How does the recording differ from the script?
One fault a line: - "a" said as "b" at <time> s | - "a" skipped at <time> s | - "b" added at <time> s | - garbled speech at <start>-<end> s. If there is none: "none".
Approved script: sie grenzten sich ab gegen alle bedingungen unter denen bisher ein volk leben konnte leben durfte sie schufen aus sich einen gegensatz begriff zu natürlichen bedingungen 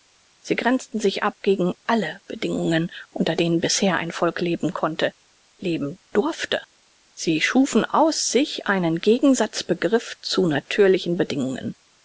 none